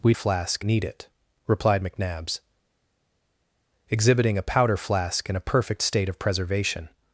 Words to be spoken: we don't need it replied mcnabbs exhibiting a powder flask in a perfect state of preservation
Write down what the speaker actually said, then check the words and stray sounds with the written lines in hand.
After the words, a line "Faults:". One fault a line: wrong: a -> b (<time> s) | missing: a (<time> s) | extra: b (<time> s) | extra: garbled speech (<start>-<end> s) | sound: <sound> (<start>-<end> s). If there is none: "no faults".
we flask need it replied mcnabbs exhibiting a powder flask in a perfect state of preservation
Faults:
wrong: don't -> flask (0.1 s)